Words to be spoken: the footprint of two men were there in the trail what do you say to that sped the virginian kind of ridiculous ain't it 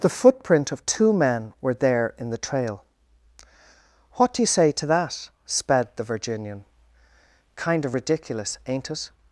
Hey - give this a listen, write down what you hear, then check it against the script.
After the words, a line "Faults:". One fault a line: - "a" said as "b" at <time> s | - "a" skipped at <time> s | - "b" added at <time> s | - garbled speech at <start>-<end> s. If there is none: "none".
the footprint of two men were there in the trail what do you say to that sped the virginian kind of ridiculous ain't it
Faults:
none